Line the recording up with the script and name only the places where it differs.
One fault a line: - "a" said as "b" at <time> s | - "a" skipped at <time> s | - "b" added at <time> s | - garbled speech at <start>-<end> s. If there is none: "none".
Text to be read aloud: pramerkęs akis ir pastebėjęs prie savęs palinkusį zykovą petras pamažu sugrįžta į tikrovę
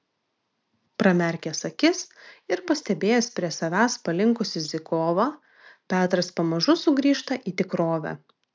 none